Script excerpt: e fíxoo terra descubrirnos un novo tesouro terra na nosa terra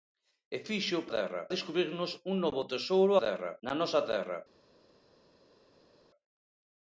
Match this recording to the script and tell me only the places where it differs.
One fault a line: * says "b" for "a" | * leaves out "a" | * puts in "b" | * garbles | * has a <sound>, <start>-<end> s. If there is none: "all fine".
all fine